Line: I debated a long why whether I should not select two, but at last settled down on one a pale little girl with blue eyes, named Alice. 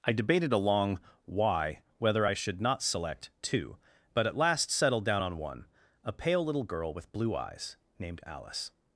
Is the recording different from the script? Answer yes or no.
no